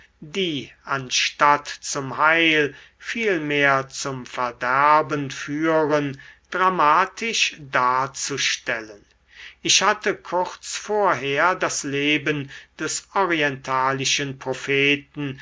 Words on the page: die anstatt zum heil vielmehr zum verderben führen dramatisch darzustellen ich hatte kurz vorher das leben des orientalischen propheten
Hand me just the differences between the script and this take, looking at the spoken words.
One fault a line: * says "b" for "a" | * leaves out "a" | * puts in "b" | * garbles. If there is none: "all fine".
all fine